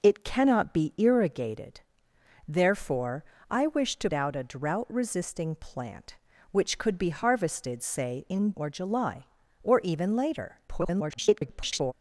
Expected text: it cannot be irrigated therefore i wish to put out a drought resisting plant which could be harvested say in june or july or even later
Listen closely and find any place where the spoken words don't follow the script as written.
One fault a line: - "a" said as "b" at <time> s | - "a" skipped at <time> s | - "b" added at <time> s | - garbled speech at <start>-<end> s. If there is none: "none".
- "put" skipped at 4.1 s
- "june" skipped at 8.5 s
- garbled speech at 10.7-11.9 s